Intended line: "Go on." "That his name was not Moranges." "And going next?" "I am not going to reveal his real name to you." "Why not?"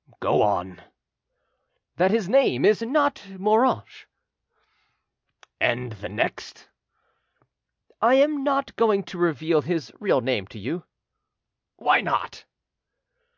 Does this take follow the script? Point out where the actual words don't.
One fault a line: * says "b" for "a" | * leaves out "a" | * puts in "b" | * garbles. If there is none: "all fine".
* says "is" for "was"
* says "the" for "going"